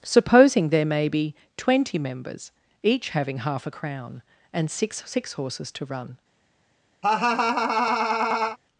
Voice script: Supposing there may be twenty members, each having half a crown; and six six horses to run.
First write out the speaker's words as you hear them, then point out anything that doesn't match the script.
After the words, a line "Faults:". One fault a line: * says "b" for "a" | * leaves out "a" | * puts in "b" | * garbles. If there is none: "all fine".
Supposing there may be twenty members, each having half a crown; and six six horses to run.
Faults:
all fine